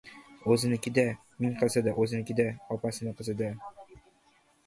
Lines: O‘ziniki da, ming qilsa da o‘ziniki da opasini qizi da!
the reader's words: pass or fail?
pass